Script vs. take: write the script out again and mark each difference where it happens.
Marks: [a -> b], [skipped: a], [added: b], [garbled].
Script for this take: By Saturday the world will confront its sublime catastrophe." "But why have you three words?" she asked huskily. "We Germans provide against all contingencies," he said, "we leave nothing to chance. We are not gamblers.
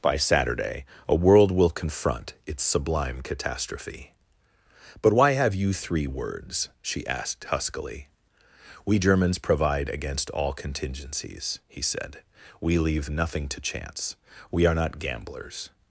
By Saturday [the -> a] world will confront its sublime catastrophe." "But why have you three words?" she asked huskily. "We Germans provide against all contingencies," he said, "we leave nothing to chance. We are not gamblers.